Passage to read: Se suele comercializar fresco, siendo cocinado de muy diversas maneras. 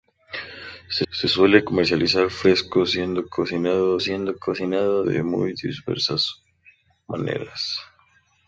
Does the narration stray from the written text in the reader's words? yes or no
yes